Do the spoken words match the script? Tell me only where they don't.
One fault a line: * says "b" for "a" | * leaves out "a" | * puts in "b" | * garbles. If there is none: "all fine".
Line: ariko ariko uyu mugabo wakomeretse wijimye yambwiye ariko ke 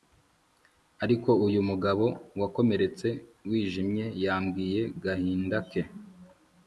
* leaves out "ariko"
* says "gahinda" for "ariko"